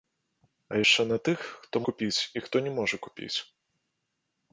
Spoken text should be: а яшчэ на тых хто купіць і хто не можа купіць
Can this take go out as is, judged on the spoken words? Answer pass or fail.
pass